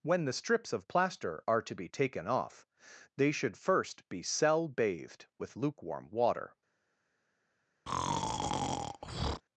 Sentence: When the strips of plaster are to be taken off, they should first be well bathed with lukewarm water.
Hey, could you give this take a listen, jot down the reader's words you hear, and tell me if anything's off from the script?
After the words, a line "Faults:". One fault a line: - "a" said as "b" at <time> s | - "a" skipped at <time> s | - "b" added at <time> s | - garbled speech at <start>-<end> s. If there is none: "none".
When the strips of plaster are to be taken off, they should first be cell bathed with lukewarm water.
Faults:
- "well" said as "cell" at 4.2 s